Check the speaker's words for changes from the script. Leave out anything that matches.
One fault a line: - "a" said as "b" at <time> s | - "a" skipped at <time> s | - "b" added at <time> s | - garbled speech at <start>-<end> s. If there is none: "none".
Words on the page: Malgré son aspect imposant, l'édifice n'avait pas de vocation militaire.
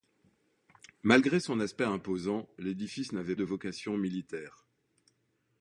- "pas" skipped at 3.4 s